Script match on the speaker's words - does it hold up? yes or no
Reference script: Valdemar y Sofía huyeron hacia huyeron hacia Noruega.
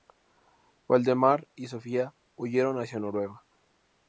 no